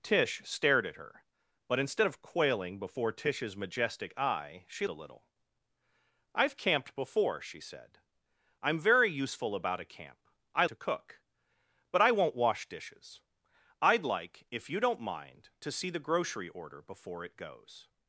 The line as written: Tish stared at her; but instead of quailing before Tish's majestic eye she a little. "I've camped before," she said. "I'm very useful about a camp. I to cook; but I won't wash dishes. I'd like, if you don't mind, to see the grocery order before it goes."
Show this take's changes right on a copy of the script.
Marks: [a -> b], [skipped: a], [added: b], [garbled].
Tish stared at her; but instead of quailing before Tish's majestic eye she a little. "I've camped before," she said. "I'm very useful about a camp. I to cook; but I won't wash dishes. I'd like, if you don't mind, to see the grocery order before it goes."